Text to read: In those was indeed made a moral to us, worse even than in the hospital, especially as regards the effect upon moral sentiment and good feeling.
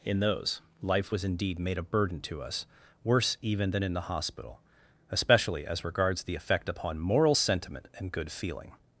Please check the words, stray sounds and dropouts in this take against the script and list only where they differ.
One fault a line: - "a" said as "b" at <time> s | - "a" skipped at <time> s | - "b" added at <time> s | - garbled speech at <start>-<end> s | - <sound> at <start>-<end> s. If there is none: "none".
- "life" added at 0.8 s
- "moral" said as "burden" at 1.8 s